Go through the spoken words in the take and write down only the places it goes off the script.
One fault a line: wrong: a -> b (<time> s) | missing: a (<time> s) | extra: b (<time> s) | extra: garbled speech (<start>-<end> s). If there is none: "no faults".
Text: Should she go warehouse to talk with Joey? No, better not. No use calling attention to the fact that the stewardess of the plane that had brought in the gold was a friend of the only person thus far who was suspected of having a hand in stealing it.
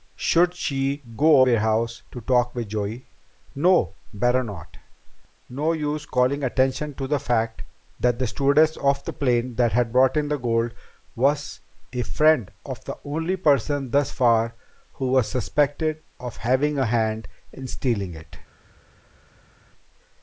no faults